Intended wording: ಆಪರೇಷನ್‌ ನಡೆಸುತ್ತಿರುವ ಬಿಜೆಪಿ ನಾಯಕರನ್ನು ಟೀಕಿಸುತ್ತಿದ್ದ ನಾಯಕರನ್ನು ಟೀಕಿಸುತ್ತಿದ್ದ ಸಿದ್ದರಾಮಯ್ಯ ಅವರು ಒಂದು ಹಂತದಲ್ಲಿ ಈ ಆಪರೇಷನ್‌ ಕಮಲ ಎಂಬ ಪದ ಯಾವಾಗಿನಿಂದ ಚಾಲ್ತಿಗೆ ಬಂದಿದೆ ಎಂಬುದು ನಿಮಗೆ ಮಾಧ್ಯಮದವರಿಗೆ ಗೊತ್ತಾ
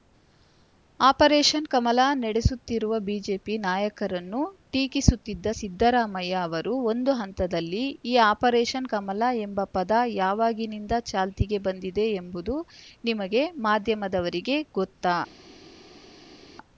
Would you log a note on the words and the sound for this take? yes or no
yes